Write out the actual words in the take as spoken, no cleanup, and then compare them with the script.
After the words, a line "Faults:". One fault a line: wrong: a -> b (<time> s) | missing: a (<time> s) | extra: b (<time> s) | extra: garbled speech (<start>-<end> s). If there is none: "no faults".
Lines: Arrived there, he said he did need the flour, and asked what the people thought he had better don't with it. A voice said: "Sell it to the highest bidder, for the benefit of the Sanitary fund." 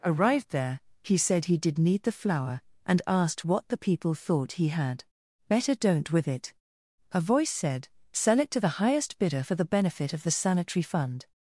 Arrived there, he said he did need the flour, and asked what the people thought he had better don't with it. A voice said: "Sell it to the highest bidder, for the benefit of the Sanitary fund."
Faults:
no faults